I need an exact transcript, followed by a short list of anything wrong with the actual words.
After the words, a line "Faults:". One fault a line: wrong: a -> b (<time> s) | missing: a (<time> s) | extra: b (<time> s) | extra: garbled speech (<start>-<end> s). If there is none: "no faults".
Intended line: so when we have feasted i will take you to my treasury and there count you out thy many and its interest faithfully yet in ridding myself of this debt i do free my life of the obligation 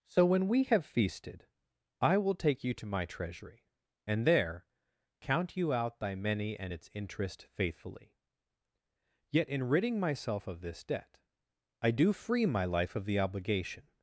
so when we have feasted i will take you to my treasury and there count you out thy many and its interest faithfully yet in ridding myself of this debt i do free my life of the obligation
Faults:
no faults